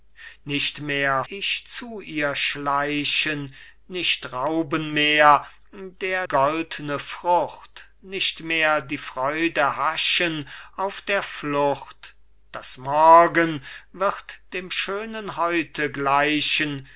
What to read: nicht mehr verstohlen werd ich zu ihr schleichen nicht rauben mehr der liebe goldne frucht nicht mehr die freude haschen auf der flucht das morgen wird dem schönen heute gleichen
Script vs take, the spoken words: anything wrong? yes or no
yes